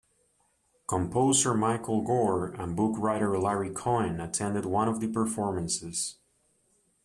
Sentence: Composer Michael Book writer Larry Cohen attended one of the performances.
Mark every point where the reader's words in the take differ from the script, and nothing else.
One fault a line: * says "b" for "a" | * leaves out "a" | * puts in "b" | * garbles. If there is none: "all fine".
* puts in "Gore and"